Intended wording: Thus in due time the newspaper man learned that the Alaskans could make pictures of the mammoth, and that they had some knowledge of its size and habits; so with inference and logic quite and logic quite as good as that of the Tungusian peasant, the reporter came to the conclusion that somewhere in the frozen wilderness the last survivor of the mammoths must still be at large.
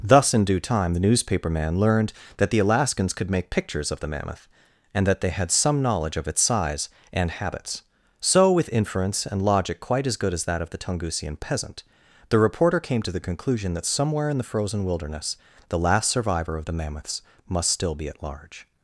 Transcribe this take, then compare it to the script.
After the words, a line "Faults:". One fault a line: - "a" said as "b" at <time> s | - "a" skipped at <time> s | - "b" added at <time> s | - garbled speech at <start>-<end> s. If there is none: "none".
Thus in due time the newspaper man learned that the Alaskans could make pictures of the mammoth, and that they had some knowledge of its size and habits; so with inference and logic quite as good as that of the Tungusian peasant, the reporter came to the conclusion that somewhere in the frozen wilderness the last survivor of the mammoths must still be at large.
Faults:
- "and logic quite" skipped at 10.1 s